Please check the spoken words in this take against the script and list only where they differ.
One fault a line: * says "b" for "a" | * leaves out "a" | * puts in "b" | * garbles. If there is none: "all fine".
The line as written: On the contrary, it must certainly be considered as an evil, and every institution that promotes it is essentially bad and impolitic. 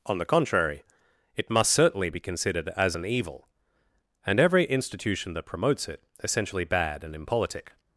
* leaves out "is"